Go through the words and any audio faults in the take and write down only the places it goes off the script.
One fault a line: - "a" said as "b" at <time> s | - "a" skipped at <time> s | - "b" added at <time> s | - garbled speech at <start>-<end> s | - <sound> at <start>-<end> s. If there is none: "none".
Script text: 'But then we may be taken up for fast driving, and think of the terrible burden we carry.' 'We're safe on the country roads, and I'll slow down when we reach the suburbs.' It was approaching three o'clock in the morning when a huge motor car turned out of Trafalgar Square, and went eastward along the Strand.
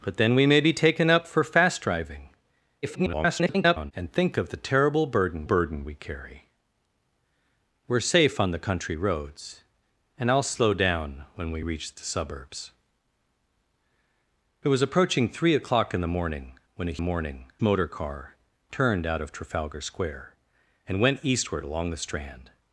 - garbled speech at 2.8-3.9 s
- "burden" added at 5.4 s
- "huge" said as "morning" at 17.0 s